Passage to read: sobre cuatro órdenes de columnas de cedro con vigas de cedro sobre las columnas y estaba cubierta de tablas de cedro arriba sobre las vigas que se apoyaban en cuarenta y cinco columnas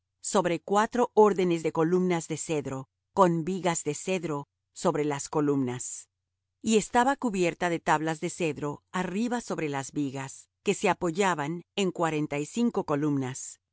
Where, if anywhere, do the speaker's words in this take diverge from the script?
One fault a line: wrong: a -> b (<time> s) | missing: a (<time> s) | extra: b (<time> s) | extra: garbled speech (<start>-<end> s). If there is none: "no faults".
no faults